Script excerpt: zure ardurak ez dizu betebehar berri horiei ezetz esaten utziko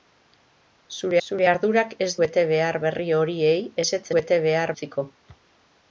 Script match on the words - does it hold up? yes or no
no